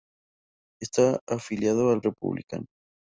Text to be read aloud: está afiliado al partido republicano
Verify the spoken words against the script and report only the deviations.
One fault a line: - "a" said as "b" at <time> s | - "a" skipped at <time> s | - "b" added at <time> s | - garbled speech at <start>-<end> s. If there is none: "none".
- "partido" skipped at 2.0 s